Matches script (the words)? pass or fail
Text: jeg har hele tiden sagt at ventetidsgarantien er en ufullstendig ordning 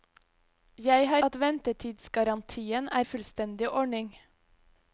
fail